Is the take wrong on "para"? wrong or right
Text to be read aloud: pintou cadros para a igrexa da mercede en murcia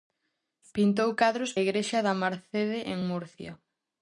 wrong